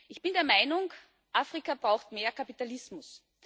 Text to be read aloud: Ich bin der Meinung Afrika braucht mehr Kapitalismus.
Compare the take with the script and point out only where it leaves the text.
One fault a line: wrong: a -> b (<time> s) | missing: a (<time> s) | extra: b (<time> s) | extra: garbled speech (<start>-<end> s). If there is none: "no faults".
no faults